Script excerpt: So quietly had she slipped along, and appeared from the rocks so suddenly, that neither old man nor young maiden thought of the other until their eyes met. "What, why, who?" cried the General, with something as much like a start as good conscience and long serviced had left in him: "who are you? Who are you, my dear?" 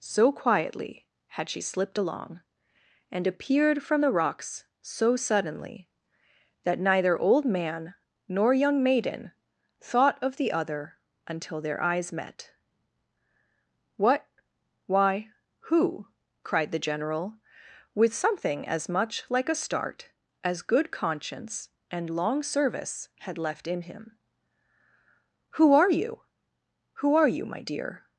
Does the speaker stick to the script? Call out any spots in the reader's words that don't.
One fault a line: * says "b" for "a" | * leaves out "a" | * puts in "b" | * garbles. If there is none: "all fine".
* says "service" for "serviced"